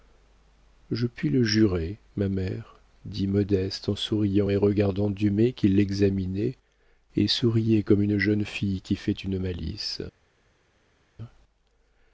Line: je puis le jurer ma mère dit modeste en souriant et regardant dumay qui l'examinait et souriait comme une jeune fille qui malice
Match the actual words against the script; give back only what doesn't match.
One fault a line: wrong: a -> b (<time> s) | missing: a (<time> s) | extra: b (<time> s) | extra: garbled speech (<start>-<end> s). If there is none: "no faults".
extra: fait une (9.0 s)